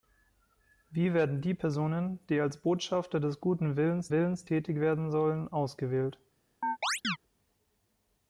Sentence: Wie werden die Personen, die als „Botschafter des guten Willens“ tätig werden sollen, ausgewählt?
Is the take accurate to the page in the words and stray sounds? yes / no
no